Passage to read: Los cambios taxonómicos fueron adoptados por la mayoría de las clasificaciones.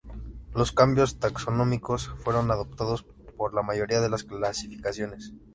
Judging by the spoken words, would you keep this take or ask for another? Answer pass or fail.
pass